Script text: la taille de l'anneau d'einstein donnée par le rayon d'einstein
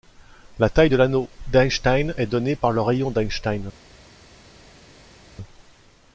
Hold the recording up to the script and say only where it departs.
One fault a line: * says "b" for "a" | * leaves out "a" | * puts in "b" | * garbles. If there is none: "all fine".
* puts in "est"